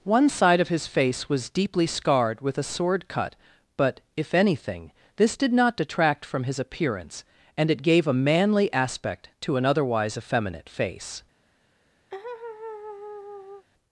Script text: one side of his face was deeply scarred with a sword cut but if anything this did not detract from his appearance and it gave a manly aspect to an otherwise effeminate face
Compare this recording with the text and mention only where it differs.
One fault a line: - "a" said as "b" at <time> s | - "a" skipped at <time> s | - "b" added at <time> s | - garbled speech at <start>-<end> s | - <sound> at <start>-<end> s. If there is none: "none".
- laugh at 12.1-13.7 s